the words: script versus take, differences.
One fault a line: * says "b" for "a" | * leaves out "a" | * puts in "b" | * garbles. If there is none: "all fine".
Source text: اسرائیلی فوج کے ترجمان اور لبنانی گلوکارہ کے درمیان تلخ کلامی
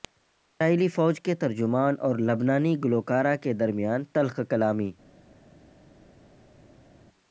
all fine